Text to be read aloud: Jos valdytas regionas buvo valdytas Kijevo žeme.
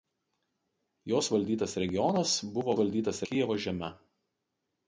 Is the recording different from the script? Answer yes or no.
no